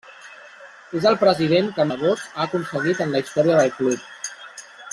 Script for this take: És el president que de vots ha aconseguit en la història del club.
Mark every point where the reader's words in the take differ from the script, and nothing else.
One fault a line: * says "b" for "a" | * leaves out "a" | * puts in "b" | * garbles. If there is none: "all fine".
all fine